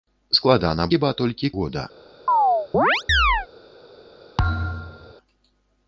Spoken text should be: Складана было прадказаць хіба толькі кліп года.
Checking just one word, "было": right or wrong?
wrong